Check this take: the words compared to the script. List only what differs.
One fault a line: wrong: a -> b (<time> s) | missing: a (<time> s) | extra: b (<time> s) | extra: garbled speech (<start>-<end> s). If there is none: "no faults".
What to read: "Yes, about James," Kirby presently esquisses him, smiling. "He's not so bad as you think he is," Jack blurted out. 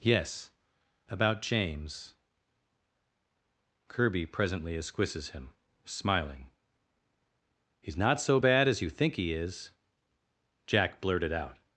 no faults